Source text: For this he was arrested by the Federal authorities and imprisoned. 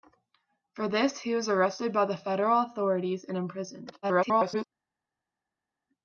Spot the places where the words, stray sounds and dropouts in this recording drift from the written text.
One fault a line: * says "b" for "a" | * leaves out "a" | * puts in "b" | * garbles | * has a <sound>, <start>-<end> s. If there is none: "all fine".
* garbles